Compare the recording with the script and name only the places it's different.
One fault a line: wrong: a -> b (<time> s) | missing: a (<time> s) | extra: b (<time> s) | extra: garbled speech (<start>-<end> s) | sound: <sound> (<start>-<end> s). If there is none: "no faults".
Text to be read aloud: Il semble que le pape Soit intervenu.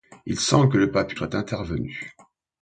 no faults